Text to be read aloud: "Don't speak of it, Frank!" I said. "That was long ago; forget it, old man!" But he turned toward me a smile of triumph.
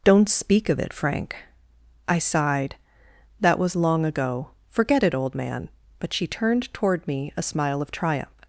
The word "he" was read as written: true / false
false